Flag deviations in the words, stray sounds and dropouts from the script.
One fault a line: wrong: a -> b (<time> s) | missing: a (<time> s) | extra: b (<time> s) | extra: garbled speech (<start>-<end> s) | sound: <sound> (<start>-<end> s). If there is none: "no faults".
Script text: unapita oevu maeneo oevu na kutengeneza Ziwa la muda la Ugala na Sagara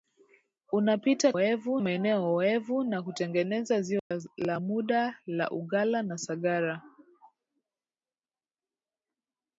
sound: dropout (4.0-4.1 s)